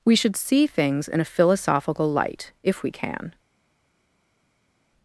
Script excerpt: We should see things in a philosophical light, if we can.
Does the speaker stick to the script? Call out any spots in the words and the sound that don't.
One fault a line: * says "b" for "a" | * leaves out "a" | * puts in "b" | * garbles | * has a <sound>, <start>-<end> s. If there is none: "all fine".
all fine